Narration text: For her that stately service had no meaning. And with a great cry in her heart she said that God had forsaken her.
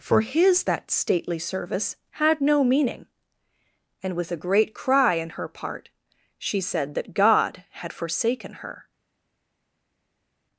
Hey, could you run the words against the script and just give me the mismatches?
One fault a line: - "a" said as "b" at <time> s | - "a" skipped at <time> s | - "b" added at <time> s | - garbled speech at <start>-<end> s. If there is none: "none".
- "her" said as "his" at 0.2 s
- "heart" said as "part" at 5.5 s